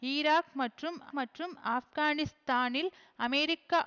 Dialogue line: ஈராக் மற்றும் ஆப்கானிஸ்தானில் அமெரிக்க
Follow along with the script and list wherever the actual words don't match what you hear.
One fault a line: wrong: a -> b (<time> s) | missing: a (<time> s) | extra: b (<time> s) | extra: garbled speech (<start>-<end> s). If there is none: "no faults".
extra: மற்றும் (1.1 s)